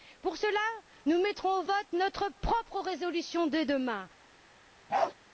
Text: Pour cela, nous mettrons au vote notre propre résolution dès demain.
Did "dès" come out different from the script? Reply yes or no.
no